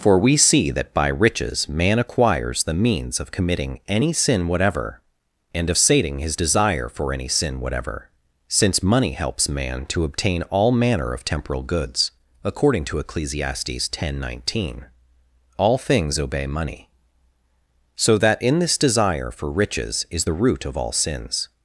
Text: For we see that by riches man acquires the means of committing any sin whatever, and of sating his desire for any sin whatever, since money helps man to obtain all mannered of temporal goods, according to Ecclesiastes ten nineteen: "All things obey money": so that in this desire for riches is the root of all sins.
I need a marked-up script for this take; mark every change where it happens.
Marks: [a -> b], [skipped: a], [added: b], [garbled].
For we see that by riches man acquires the means of committing any sin whatever, and of sating his desire for any sin whatever, since money helps man to obtain all [mannered -> manner] of temporal goods, according to Ecclesiastes ten nineteen: "All things obey money": so that in this desire for riches is the root of all sins.